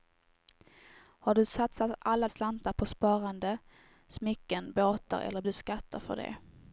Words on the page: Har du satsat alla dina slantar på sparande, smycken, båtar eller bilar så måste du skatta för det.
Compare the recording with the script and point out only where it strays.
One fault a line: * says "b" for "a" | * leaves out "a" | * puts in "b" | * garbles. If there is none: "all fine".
* leaves out "dina"
* leaves out "bilar så måste"